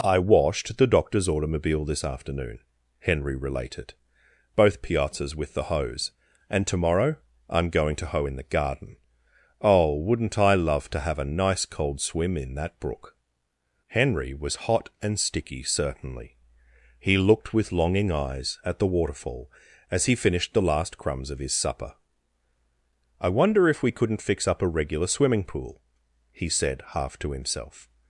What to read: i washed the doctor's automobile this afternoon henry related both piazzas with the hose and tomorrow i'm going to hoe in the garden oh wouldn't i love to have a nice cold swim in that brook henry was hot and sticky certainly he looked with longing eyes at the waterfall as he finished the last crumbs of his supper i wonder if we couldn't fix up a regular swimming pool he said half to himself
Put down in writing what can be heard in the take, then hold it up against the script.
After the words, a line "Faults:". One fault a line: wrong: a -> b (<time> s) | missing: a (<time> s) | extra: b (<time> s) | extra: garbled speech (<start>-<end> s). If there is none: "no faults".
i washed the doctor's automobile this afternoon henry related both piazzas with the hose and tomorrow i'm going to hoe in the garden oh wouldn't i love to have a nice cold swim in that brook henry was hot and sticky certainly he looked with longing eyes at the waterfall as he finished the last crumbs of his supper i wonder if we couldn't fix up a regular swimming pool he said half to himself
Faults:
no faults